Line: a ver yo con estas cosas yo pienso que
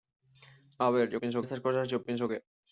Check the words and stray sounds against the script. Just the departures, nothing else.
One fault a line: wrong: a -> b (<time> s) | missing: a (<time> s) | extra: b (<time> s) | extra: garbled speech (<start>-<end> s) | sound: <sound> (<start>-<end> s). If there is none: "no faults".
wrong: con -> pienso (1.2 s)